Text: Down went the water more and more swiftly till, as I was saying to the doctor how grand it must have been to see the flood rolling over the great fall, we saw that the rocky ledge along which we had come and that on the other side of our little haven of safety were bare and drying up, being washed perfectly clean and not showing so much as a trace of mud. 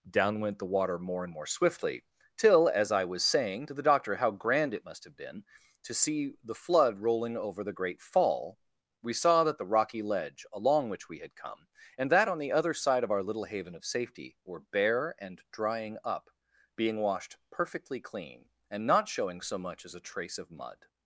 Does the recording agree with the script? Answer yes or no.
yes